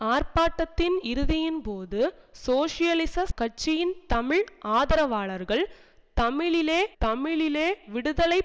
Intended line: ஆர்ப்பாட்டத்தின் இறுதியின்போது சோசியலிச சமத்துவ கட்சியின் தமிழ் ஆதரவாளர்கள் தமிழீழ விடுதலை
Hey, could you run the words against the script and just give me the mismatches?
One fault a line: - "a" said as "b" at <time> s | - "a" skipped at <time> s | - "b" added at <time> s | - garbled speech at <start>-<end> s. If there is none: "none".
- "சமத்துவ" skipped at 3.2 s
- "தமிழீழ" added at 7.0 s